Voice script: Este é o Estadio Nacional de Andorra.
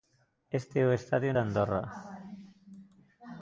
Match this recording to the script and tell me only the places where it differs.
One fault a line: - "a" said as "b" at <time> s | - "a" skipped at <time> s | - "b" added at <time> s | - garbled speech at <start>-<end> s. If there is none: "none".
- "Nacional" skipped at 1.3 s